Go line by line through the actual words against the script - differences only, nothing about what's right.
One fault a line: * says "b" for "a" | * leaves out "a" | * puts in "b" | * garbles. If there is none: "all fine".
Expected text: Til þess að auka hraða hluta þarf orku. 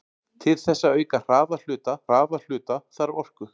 * puts in "hraða hluta"